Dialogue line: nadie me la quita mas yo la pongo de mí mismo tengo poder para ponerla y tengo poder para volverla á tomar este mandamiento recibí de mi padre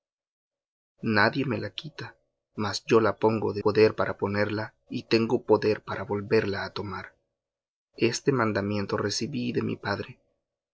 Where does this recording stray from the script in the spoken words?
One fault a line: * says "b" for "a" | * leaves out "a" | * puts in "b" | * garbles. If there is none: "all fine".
* leaves out "mí mismo tengo"